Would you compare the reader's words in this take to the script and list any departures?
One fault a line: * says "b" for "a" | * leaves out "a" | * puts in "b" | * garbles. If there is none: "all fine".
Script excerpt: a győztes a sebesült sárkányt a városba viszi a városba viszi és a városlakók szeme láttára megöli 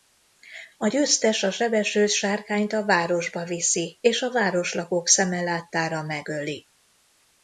* leaves out "a városba viszi"